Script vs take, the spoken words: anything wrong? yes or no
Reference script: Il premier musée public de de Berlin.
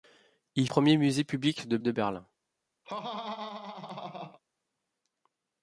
no